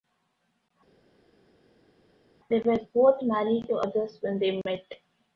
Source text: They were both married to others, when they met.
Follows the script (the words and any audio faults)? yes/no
yes